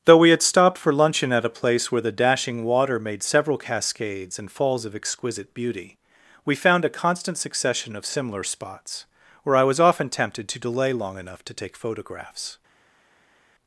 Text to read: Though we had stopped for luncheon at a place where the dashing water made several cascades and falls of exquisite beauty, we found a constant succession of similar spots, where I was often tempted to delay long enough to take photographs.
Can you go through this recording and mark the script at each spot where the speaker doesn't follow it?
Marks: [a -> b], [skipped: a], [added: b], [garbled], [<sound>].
Though we had stopped for luncheon at a place where the dashing water made several cascades and falls of exquisite beauty, we found a constant succession of similar spots, where I was often tempted to delay long enough to take photographs.